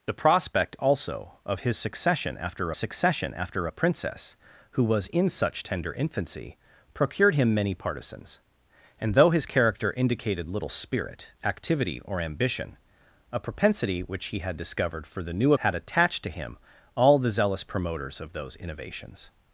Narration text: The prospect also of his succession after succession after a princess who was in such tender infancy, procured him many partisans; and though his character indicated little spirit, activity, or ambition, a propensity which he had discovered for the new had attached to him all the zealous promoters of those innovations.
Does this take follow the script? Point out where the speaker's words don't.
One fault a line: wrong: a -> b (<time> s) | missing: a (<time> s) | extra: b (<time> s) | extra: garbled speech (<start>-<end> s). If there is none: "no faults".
no faults